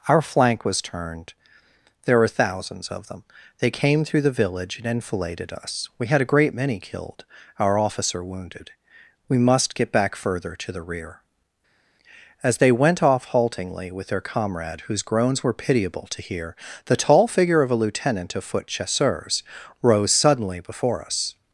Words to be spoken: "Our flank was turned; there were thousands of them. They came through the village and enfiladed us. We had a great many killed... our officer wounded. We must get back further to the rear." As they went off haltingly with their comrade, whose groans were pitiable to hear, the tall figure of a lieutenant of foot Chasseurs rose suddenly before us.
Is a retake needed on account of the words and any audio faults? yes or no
no